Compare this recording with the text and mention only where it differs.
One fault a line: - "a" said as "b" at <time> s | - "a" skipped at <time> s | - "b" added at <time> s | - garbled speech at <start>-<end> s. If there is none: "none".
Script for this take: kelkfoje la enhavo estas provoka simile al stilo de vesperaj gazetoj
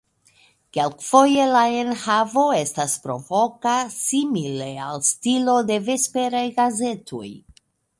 none